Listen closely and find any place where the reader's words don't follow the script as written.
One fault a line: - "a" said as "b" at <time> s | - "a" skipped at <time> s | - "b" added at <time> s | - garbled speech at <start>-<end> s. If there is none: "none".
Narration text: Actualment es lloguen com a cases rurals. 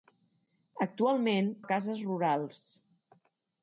- "es lloguen com" skipped at 1.5 s